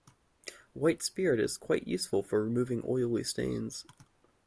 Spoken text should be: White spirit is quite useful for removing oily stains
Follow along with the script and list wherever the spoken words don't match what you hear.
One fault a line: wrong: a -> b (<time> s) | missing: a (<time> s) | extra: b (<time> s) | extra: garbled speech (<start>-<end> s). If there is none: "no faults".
no faults